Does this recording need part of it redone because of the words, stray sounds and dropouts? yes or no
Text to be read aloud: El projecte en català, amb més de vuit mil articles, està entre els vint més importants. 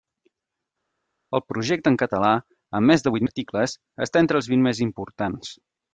yes